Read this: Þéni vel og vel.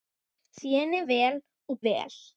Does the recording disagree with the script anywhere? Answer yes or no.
no